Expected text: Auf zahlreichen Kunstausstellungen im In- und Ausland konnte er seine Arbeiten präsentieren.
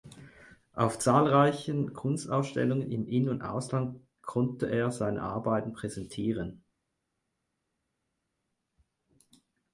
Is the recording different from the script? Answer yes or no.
no